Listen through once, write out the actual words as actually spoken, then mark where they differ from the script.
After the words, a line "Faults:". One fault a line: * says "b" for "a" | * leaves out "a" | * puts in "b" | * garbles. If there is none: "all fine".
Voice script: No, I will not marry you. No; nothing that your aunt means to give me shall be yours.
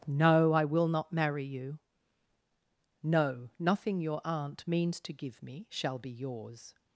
No, I will not marry you. No; nothing your aunt means to give me shall be yours.
Faults:
* leaves out "that"